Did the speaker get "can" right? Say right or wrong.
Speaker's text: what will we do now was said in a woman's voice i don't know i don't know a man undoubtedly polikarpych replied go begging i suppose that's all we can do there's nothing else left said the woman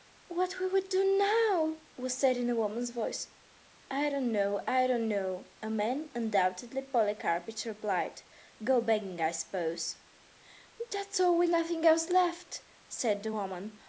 wrong